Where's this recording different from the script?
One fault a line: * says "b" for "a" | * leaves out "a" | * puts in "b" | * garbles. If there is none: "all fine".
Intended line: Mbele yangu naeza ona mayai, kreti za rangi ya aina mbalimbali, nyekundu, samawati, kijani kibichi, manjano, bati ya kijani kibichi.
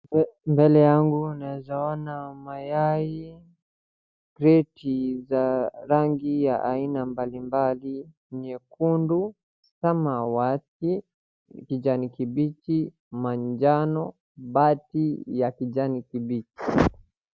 all fine